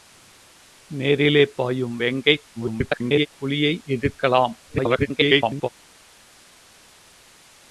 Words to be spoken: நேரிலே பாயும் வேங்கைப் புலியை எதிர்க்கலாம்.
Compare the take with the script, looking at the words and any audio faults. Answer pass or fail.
fail